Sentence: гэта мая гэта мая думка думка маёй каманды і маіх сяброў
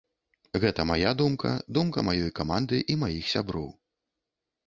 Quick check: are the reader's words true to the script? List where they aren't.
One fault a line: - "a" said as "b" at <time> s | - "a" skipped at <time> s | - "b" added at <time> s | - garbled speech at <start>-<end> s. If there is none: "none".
- "гэта мая" skipped at 1.1 s